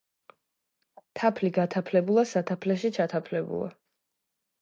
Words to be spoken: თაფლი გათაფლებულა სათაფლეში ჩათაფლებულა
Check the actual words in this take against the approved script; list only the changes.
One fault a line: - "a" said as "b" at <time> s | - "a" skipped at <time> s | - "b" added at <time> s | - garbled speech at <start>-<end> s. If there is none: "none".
none